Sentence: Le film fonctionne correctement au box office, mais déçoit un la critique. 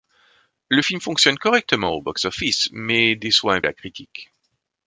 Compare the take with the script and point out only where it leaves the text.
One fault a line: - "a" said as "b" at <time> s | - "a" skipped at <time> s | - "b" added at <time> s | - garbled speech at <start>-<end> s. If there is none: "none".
none